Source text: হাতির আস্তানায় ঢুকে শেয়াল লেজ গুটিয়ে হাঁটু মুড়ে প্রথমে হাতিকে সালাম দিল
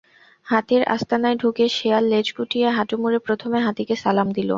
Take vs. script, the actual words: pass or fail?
pass